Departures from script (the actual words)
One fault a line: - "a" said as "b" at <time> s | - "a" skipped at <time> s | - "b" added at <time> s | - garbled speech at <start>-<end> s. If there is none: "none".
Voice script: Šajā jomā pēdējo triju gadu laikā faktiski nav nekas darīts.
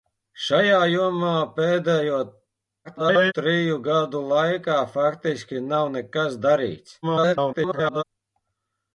- garbled speech at 2.8-3.3 s
- garbled speech at 7.0-8.0 s